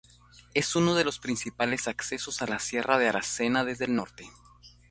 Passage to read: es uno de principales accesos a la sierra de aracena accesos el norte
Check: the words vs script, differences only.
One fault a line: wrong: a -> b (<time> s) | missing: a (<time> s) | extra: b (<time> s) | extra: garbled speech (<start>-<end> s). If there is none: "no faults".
extra: los (1.0 s)
wrong: accesos -> desde (3.6 s)